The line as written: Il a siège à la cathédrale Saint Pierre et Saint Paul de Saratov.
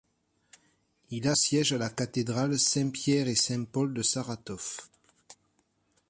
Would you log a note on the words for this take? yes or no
no